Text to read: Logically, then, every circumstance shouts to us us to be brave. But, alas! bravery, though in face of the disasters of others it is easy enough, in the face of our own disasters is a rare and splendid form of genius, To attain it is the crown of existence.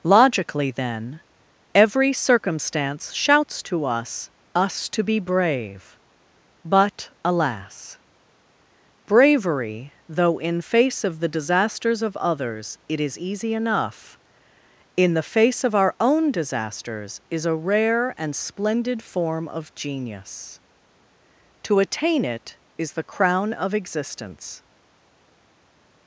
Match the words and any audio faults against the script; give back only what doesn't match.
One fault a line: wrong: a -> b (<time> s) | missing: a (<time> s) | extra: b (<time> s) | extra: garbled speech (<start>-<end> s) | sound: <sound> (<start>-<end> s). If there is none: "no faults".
no faults